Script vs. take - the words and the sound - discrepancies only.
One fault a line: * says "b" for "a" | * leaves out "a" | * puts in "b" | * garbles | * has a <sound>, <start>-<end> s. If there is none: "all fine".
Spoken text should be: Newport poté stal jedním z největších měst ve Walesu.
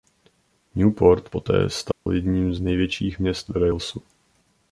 * has a dropout, 1.9-2.1 s